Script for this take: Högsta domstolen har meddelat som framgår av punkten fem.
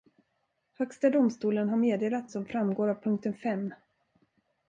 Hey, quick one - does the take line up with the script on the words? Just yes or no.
yes